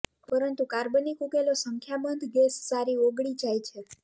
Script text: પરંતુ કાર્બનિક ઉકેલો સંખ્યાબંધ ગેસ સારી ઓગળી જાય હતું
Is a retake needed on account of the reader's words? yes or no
yes